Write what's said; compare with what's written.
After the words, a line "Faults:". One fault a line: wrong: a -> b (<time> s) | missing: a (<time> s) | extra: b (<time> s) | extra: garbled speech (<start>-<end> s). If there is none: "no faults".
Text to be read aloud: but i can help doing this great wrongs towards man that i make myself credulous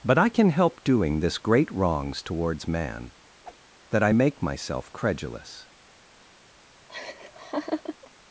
but i can help doing this great wrongs towards man that i make myself credulous
Faults:
no faults